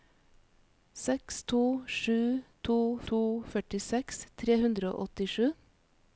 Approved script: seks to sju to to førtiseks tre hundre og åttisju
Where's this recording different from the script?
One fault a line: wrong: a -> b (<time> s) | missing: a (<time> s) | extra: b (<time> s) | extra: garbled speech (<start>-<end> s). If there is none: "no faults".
no faults